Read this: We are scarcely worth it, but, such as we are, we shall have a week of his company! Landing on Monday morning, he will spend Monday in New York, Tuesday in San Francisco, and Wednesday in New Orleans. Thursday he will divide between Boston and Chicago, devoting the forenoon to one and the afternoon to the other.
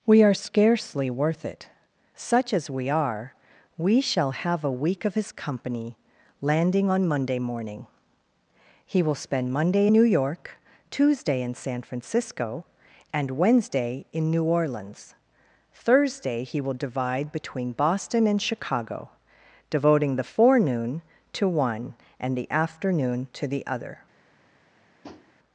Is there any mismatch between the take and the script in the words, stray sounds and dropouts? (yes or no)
yes